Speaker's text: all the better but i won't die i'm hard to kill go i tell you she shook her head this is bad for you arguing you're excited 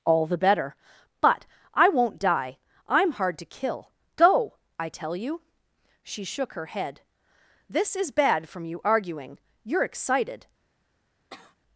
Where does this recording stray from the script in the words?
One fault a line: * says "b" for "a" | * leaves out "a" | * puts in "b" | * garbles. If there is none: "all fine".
* says "from" for "for"